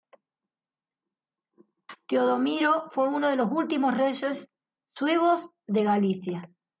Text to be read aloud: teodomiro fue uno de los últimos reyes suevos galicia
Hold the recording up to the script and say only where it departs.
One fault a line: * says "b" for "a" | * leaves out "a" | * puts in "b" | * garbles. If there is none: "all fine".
* puts in "de"